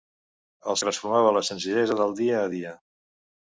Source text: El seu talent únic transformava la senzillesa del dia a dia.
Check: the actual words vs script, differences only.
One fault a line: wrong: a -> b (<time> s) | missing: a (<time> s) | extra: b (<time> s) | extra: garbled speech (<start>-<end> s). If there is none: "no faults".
missing: seu talent únic (0.8 s)